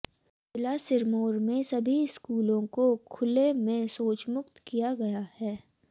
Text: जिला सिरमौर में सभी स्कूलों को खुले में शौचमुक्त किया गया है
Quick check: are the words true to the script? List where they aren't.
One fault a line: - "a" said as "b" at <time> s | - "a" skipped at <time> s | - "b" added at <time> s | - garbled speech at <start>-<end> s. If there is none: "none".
none